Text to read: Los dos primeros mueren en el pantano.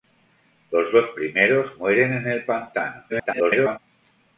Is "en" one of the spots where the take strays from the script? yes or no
no